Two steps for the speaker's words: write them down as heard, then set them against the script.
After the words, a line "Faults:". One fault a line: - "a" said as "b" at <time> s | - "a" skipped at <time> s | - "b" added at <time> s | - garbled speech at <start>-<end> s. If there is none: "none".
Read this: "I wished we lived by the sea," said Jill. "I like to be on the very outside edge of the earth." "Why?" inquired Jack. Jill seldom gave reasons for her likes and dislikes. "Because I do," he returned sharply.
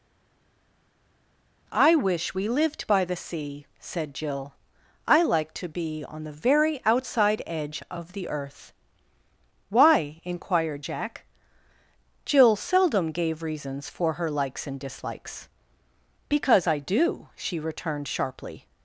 "I wish we lived by the sea," said Jill. "I like to be on the very outside edge of the earth." "Why?" inquired Jack. Jill seldom gave reasons for her likes and dislikes. "Because I do," she returned sharply.
Faults:
- "wished" said as "wish" at 2.0 s
- "he" said as "she" at 17.3 s